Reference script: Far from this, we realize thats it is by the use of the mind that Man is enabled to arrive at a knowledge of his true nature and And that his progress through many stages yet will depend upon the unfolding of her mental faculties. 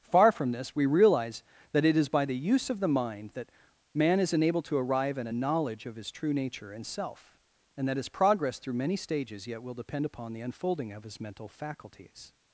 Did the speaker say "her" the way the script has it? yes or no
no